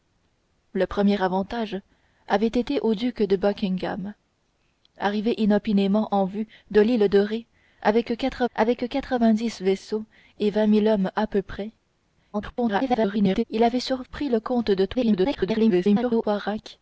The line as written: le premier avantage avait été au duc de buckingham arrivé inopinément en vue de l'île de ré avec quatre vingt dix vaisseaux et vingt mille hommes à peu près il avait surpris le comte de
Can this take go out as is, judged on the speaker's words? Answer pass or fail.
fail